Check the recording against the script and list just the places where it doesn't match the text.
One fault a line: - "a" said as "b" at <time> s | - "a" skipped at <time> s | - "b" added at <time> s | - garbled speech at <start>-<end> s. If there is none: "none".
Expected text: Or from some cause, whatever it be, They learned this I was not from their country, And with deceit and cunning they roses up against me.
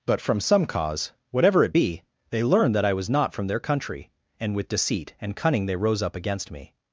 - "Or" said as "But" at 0.1 s
- "this" said as "that" at 2.7 s
- "roses" said as "rose" at 5.7 s